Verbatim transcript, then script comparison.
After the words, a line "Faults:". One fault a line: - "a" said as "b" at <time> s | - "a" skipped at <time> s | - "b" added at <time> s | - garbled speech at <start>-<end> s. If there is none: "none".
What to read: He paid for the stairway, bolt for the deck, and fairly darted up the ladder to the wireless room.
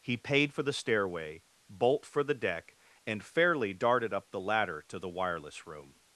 He paid for the stairway, bolt for the deck, and fairly darted up the ladder to the wireless room.
Faults:
none